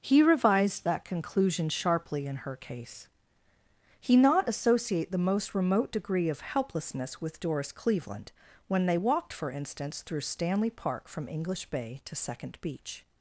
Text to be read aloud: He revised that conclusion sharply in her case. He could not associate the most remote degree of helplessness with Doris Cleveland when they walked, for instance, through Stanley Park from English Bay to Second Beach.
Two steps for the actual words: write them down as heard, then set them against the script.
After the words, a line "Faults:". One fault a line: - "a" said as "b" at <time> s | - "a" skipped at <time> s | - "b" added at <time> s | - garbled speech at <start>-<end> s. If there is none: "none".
He revised that conclusion sharply in her case. He not associate the most remote degree of helplessness with Doris Cleveland when they walked, for instance, through Stanley Park from English Bay to Second Beach.
Faults:
- "could" skipped at 4.2 s